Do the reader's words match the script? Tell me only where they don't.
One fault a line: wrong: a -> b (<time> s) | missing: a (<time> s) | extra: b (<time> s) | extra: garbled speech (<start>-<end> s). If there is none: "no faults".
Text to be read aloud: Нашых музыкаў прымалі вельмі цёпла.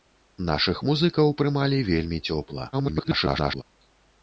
extra: garbled speech (2.7-3.6 s)